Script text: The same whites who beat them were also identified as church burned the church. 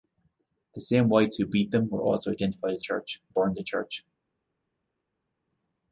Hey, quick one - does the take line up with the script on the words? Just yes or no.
yes